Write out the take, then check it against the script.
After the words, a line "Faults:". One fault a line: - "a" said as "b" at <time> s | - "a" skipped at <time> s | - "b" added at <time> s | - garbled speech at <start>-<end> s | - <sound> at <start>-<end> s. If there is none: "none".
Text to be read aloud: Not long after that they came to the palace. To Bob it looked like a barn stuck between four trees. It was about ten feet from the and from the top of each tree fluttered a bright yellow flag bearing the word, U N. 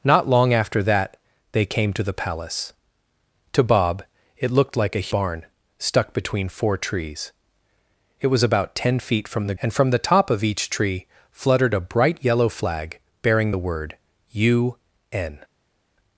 Not long after that they came to the palace. To Bob it looked like a barn stuck between four trees. It was about ten feet from the and from the top of each tree fluttered a bright yellow flag bearing the word, U N.
Faults:
none